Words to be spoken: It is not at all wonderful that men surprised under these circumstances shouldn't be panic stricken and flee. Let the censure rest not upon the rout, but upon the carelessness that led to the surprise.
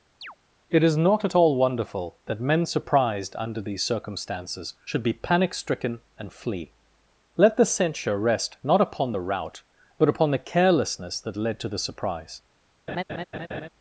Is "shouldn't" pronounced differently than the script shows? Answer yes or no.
yes